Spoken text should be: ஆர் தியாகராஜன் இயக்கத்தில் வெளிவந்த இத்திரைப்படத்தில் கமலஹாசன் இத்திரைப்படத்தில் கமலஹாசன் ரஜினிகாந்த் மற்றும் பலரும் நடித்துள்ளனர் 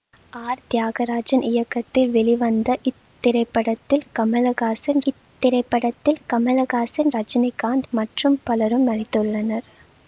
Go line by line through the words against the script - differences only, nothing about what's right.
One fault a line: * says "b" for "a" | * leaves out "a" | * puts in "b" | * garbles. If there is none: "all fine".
all fine